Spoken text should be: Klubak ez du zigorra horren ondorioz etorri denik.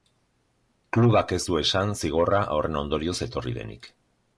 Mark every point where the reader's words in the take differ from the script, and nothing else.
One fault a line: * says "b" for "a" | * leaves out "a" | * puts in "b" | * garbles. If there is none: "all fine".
* puts in "esan"